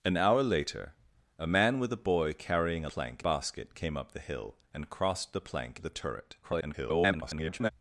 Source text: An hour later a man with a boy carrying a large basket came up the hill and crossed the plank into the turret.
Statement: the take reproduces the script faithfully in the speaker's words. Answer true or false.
false